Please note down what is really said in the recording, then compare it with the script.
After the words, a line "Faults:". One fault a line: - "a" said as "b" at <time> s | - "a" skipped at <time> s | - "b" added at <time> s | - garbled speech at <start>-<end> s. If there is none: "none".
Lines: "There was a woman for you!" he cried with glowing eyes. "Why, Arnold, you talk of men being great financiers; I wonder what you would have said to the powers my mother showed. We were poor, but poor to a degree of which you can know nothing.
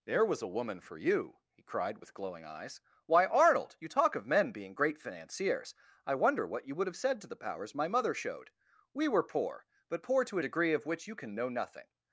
"There was a woman for you!" he cried with glowing eyes. "Why, Arnold, you talk of men being great financiers; I wonder what you would have said to the powers my mother showed. We were poor, but poor to a degree of which you can know nothing.
Faults:
none